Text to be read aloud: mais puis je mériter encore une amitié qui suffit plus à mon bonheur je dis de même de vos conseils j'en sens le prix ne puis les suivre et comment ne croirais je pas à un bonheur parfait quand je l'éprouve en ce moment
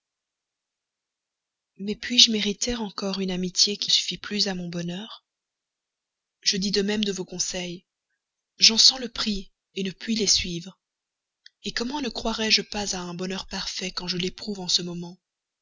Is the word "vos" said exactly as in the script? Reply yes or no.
yes